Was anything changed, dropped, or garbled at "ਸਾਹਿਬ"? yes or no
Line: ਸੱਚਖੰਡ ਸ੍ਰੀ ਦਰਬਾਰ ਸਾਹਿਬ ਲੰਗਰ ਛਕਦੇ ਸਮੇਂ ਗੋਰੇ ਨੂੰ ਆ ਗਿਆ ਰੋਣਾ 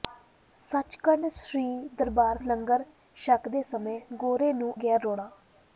yes